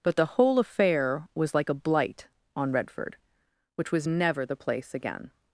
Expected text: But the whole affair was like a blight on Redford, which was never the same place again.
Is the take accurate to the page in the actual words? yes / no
no